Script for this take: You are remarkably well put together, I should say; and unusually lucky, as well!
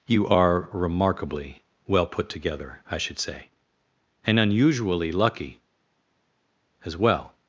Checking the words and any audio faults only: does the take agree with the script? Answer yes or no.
yes